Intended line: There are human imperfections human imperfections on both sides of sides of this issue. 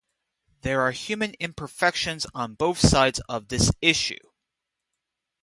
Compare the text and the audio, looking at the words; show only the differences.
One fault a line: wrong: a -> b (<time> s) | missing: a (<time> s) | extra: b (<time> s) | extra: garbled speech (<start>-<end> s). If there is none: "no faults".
missing: human imperfections (2.3 s)
missing: sides of (3.5 s)